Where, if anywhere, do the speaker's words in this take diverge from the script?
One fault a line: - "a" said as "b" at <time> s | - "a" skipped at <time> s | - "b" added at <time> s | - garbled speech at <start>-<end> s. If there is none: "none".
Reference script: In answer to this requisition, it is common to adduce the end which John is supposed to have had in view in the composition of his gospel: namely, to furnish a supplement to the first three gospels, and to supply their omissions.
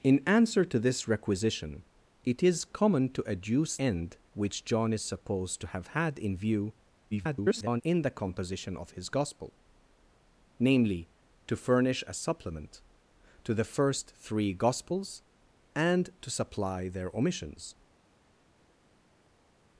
- "the" skipped at 3.8 s
- garbled speech at 7.1-7.8 s